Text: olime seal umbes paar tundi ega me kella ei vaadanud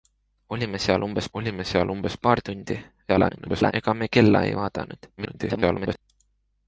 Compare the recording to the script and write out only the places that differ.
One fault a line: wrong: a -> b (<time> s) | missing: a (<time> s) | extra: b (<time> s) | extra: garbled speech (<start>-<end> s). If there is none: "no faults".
extra: olime seal umbes (1.4 s)
extra: garbled speech (3.1-3.7 s)
extra: garbled speech (5.2-6.0 s)